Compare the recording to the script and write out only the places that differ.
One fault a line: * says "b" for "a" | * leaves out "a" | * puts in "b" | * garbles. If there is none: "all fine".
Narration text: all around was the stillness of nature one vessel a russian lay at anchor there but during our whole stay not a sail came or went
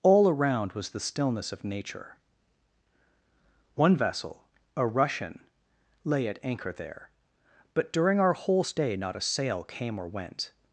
all fine